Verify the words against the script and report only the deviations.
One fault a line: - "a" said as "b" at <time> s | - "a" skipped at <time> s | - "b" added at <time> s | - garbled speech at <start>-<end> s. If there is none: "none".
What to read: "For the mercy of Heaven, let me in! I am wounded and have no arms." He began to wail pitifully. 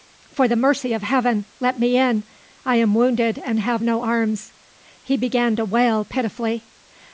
none